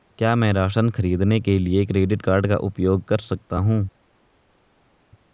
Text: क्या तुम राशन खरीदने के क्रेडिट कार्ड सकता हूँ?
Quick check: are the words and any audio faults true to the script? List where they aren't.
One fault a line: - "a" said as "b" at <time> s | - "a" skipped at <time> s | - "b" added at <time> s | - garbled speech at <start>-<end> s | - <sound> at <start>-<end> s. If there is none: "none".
- "तुम" said as "मैं" at 0.3 s
- "लिए" added at 1.6 s
- "का उपयोग कर" added at 2.5 s